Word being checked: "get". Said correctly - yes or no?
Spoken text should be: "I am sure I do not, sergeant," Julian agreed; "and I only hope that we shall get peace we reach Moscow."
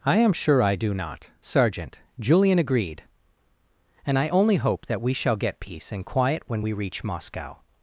yes